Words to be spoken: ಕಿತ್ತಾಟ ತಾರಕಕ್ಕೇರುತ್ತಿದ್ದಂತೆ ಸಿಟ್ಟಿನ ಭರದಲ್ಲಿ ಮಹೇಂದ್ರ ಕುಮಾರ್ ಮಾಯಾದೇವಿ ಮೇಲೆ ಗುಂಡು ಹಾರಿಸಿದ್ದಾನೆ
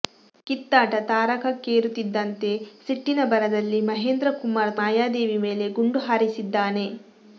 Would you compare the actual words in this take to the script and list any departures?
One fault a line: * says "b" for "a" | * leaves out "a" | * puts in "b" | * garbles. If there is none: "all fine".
all fine